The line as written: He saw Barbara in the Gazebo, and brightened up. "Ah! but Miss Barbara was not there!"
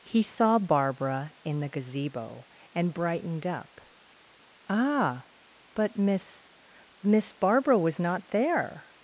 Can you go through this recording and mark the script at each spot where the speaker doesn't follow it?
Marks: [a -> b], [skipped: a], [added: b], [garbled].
He saw Barbara in the Gazebo, and brightened up. "Ah! but Miss [added: Miss] Barbara was not there!"